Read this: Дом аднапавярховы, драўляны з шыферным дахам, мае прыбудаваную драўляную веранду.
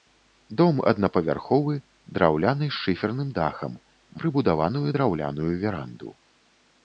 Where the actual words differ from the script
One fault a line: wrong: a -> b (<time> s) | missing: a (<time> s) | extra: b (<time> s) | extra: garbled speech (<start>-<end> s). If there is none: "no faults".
missing: мае (3.8 s)